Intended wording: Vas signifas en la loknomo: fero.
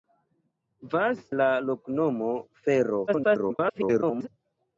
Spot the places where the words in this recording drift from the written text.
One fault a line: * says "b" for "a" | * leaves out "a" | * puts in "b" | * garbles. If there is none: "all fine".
* leaves out "signifas en"
* garbles